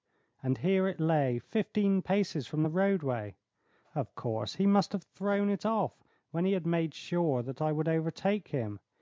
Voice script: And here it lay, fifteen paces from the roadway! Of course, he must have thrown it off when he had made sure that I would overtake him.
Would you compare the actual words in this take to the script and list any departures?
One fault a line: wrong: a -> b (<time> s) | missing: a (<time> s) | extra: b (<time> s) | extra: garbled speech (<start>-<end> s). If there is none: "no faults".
no faults